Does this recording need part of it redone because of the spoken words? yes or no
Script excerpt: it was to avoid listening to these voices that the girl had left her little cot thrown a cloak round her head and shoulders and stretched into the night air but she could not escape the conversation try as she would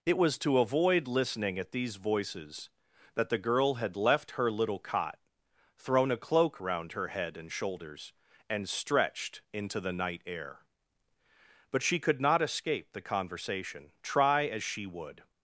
yes